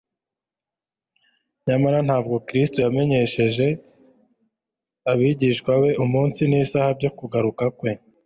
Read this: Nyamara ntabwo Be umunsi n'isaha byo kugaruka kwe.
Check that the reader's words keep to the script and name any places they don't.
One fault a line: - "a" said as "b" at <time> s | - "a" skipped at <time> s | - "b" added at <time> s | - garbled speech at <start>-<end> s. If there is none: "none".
- "Kristo yamenyesheje abigishwa" added at 2.5 s